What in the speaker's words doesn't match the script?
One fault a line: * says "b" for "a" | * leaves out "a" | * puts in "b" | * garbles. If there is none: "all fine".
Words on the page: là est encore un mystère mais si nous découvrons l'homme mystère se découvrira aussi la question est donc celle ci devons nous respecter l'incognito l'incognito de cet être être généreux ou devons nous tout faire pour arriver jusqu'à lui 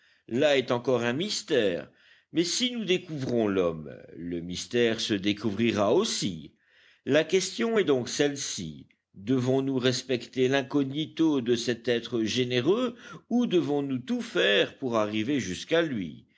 * puts in "le"
* leaves out "l'incognito"
* leaves out "être"